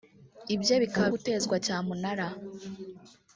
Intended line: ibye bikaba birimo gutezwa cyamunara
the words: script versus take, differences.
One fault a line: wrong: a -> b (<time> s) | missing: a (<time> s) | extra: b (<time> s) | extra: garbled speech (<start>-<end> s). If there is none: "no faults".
missing: birimo (1.1 s)